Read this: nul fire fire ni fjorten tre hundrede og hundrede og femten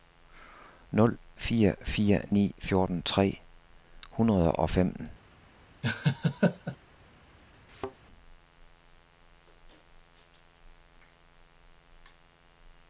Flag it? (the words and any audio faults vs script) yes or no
yes